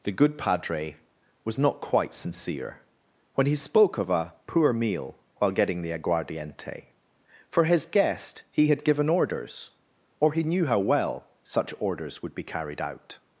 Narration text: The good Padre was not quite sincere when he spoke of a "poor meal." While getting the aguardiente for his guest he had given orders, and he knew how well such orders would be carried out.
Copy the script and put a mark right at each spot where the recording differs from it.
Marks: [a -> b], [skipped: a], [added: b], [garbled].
The good Padre was not quite sincere when he spoke of a "poor meal." While getting the aguardiente for his guest he had given orders, [and -> or] he knew how well such orders would be carried out.